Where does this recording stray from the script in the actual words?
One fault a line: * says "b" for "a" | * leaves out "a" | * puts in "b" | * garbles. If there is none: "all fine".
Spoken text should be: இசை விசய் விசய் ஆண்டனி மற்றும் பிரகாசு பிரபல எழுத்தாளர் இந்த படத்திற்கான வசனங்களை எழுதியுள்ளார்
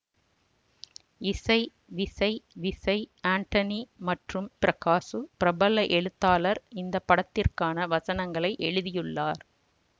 all fine